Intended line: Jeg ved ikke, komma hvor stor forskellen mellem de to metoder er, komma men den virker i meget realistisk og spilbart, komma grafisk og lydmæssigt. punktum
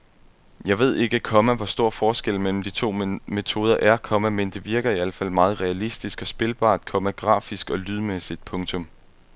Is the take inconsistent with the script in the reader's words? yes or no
yes